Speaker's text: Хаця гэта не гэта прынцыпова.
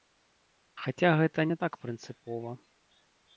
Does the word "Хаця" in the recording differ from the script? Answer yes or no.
no